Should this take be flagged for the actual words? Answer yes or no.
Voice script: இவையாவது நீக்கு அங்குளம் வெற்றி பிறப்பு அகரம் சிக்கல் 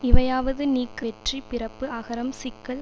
yes